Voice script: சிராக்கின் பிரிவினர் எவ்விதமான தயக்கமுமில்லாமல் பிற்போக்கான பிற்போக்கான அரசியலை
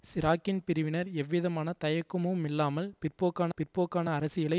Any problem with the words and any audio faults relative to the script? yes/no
no